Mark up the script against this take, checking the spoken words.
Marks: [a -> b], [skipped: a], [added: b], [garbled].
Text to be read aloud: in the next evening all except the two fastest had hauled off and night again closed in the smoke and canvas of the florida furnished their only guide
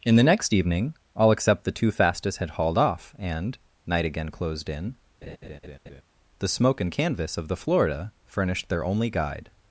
in the next evening all except the two fastest had hauled off and night again closed in the smoke and canvas of the florida furnished their only guide